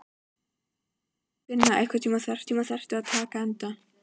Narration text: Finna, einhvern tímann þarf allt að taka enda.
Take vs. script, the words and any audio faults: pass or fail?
fail